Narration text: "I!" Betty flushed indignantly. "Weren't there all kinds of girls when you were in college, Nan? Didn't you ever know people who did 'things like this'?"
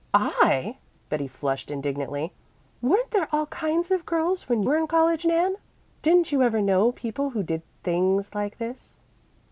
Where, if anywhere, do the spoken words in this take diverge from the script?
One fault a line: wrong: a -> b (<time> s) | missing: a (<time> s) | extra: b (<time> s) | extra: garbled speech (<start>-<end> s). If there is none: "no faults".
missing: you (4.6 s)